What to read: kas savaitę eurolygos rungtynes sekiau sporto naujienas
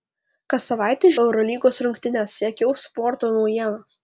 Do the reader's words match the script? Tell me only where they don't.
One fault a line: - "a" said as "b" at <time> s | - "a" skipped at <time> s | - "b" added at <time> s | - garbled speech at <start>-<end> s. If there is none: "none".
none